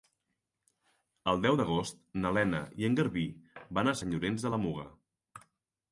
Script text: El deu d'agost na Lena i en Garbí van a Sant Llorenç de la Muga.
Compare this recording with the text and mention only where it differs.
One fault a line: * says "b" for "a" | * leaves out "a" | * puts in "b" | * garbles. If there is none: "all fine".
all fine